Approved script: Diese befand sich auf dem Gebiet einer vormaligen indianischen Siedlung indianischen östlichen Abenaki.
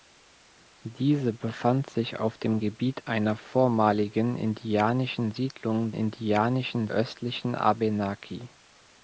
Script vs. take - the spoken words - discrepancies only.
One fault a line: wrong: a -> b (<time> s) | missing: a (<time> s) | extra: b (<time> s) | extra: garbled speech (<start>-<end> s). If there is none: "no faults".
no faults